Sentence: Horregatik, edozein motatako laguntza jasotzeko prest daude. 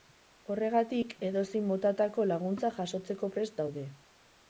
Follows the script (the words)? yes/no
yes